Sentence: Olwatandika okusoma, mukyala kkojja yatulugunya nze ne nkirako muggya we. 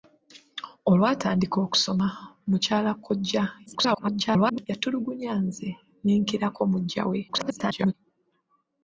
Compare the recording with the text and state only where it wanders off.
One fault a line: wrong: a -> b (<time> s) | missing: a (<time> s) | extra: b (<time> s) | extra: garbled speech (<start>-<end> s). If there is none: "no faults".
extra: garbled speech (3.7-4.7 s)
extra: garbled speech (7.3-7.9 s)